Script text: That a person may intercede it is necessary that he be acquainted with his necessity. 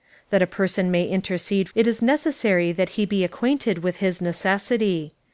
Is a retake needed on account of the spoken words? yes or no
no